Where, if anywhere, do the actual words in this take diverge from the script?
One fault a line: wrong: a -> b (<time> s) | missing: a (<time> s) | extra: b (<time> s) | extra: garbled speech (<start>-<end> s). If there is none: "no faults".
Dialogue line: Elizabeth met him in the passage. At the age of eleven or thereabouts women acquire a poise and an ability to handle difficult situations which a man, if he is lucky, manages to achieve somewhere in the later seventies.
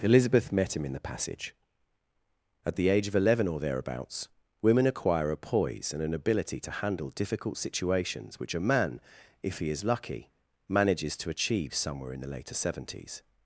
no faults